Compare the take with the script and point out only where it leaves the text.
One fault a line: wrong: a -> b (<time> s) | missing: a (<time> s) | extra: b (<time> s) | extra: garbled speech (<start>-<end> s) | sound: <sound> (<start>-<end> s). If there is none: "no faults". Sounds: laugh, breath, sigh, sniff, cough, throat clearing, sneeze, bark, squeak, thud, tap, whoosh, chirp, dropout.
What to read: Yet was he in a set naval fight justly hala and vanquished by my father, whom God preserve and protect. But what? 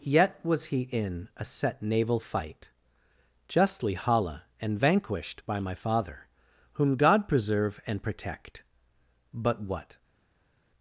no faults